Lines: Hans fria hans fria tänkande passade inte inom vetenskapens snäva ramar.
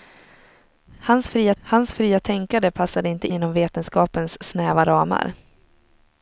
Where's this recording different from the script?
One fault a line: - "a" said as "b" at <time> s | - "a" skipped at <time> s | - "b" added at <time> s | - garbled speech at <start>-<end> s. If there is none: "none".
none